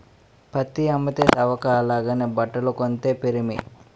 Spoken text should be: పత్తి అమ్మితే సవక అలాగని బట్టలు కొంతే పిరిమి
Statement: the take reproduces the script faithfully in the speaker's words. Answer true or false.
true